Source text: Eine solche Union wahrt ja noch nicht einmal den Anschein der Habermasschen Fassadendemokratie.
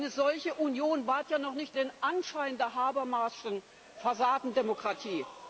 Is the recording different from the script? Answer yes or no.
yes